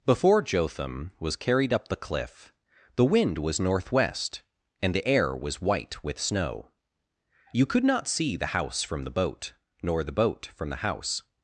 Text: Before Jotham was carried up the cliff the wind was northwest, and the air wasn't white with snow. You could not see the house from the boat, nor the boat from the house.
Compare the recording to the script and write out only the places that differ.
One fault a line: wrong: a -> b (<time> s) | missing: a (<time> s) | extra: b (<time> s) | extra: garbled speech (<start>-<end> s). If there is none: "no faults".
wrong: wasn't -> was (5.4 s)